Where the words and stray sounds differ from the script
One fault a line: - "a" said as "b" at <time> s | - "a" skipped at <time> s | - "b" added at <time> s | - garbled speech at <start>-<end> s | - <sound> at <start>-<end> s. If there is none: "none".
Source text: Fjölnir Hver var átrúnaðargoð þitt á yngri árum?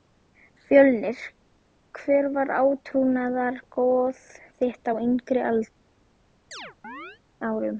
- chirp at 6.5-7.2 s